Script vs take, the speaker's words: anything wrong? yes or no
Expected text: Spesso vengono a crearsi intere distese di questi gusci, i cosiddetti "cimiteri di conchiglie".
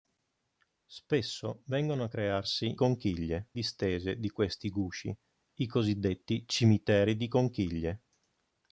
yes